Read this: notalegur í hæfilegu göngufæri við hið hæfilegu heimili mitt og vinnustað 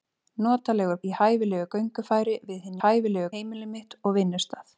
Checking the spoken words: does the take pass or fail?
pass